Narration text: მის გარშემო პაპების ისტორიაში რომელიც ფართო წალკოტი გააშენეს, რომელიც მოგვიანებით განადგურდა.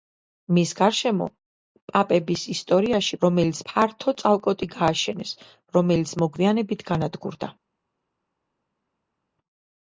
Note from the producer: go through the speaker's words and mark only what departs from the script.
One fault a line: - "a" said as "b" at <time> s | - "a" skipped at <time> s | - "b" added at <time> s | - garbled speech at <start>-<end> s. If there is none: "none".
none